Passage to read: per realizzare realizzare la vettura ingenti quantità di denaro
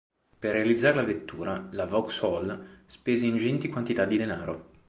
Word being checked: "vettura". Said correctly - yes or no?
no